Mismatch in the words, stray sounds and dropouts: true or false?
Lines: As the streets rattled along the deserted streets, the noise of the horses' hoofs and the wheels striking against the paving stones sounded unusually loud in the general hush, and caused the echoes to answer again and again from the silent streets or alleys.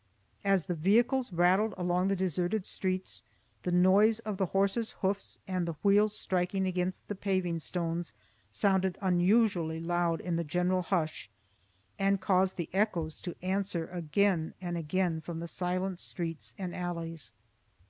true